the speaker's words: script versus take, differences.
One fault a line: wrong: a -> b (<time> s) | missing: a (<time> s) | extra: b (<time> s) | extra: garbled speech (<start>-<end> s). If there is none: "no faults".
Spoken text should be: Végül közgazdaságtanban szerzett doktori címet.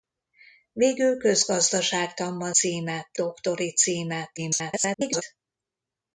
wrong: szerzett -> címet (2.5 s)
extra: garbled speech (4.4-5.2 s)